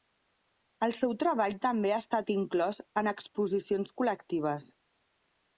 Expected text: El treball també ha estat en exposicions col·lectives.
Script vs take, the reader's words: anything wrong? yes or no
yes